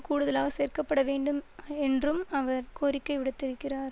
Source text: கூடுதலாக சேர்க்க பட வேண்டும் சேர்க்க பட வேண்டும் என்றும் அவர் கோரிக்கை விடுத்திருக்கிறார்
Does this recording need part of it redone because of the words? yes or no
yes